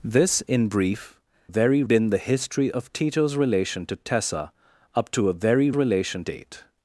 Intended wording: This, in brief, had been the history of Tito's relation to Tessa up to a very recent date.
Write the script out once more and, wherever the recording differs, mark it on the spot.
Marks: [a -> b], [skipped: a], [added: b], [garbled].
This, in brief, [had -> very] been the history of Tito's relation to Tessa up to a very [recent -> relation] date.